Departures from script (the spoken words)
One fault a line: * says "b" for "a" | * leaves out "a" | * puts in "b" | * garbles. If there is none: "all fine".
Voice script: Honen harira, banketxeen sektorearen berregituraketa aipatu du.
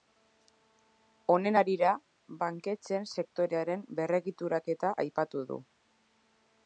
all fine